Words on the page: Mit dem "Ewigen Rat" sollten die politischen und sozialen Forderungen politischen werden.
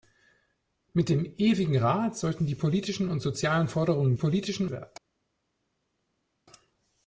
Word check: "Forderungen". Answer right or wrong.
right